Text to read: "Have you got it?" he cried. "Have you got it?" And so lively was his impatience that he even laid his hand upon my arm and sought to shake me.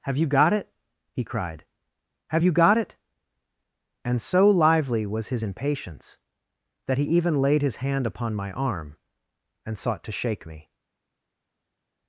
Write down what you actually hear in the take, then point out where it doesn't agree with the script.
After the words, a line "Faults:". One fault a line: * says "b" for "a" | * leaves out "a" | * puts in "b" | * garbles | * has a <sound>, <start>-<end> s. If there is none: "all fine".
"Have you got it?" he cried. "Have you got it?" And so lively was his impatience that he even laid his hand upon my arm and sought to shake me.
Faults:
all fine